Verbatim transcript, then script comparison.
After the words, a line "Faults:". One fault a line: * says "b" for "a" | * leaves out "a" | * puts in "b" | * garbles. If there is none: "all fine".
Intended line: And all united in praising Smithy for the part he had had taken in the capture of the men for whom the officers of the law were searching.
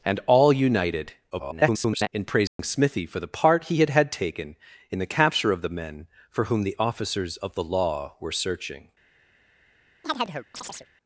And all united [garbled] in praising Smithy for the part he had had taken in the capture of the men for whom the officers of the law were searching.
Faults:
* garbles